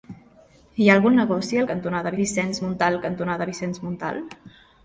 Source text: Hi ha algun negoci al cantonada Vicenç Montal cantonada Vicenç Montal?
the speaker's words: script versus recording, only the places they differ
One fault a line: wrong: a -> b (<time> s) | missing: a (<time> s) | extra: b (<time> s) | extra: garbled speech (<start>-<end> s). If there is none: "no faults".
no faults